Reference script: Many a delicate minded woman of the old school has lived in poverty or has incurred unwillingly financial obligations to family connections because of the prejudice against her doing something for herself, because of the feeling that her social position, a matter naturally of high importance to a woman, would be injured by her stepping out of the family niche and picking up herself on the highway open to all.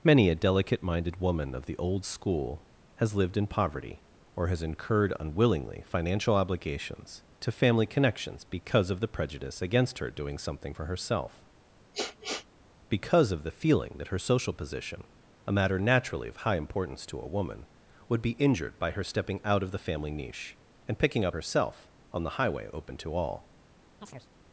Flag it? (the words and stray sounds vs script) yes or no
yes